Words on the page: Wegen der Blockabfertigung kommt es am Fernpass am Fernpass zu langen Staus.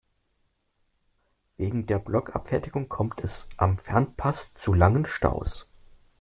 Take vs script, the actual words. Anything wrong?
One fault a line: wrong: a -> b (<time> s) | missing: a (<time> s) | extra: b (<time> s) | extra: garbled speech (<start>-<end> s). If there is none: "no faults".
missing: am Fernpass (4.5 s)